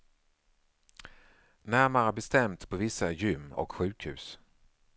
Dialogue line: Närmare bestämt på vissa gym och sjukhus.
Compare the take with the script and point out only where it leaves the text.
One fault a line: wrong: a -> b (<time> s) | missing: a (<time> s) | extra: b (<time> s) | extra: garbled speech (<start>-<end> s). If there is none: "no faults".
no faults